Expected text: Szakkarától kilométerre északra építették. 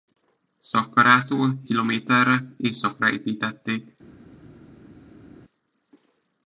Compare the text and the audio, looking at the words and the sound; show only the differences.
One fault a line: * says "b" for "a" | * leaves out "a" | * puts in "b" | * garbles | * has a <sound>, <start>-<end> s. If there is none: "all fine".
all fine